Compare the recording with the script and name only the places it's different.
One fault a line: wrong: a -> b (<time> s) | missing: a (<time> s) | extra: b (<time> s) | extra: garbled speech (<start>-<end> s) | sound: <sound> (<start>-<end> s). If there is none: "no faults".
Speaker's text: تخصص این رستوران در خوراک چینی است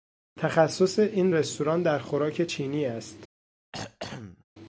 sound: throat clearing (3.7-4.4 s)